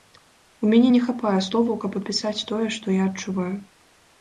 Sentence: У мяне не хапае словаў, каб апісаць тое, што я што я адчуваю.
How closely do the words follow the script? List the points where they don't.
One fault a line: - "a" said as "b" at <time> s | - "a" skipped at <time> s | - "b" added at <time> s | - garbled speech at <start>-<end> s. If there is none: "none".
- "што я" skipped at 3.1 s